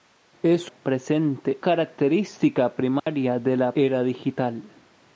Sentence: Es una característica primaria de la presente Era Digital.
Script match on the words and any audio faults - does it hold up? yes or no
no